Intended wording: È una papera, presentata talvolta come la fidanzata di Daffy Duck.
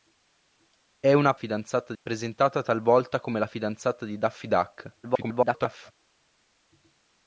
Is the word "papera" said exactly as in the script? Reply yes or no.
no